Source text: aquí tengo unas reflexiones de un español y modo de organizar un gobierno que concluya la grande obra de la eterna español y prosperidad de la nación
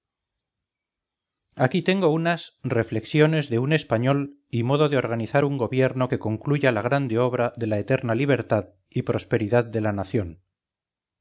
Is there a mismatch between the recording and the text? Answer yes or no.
yes